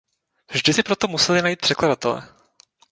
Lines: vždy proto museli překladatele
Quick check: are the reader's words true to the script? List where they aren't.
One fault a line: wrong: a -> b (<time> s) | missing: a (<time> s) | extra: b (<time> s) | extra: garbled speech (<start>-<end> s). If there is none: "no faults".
extra: si (0.7 s)
extra: najít (1.4 s)